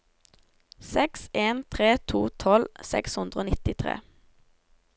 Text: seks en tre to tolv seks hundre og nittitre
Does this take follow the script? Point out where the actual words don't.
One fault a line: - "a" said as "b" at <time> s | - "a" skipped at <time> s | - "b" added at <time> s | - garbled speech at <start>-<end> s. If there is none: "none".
none